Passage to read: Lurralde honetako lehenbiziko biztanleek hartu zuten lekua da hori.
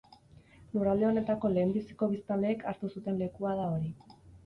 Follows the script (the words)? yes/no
yes